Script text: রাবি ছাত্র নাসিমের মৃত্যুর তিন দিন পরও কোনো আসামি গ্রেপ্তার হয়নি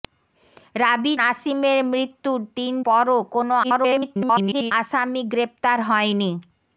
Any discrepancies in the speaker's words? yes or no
yes